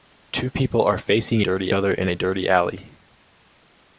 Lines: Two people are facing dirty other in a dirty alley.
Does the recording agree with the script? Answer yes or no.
yes